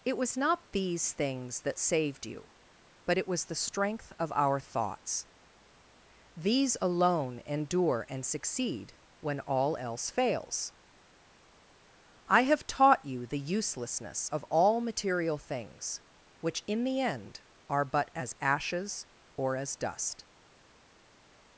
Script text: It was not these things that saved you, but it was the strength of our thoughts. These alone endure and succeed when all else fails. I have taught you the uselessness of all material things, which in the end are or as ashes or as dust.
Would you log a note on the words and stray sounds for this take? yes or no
yes